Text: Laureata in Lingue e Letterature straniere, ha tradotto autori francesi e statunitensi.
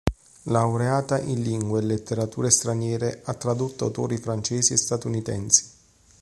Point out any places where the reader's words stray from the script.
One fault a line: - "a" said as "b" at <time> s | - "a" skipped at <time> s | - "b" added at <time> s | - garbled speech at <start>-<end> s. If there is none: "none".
none